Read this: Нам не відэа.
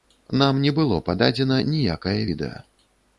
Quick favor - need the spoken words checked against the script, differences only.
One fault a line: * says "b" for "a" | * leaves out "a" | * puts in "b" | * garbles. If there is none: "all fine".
* puts in "было пададзена ніякае"